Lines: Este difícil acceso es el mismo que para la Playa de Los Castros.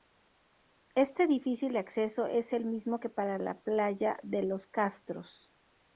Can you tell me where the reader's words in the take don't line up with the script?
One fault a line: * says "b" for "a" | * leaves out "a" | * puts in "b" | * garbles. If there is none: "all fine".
all fine